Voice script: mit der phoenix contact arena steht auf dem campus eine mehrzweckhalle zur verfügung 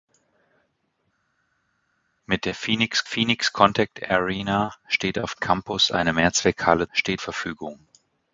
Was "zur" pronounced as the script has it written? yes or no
no